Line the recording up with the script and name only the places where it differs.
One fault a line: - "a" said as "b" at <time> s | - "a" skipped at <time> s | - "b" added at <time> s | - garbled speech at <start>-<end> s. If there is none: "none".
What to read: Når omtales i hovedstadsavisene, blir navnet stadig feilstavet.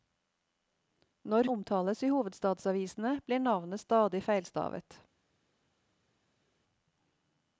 none